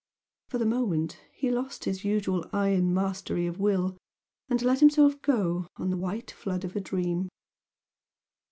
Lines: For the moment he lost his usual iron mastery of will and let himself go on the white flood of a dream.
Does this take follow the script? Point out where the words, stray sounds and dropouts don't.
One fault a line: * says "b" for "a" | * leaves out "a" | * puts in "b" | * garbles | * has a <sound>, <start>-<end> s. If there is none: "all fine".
all fine